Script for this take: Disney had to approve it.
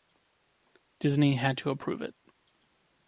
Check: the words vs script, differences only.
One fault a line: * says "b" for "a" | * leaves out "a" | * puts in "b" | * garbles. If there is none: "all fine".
all fine